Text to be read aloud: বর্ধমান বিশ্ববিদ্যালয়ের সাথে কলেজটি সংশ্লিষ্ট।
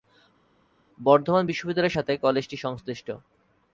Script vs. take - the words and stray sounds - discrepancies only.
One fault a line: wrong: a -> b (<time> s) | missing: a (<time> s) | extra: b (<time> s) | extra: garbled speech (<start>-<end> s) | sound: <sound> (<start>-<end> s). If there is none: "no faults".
no faults